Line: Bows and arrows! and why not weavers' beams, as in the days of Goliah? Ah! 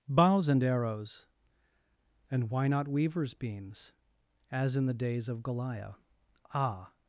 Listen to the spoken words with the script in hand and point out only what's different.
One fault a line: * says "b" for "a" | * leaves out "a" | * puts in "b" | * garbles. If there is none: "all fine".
all fine